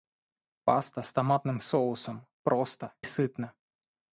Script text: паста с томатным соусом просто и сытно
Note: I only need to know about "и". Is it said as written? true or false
false